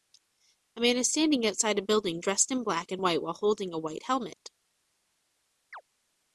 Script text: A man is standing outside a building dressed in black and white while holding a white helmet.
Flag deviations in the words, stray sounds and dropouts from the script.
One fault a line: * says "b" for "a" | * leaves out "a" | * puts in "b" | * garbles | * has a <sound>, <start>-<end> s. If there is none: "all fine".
* has a chirp, 5.7-5.8 s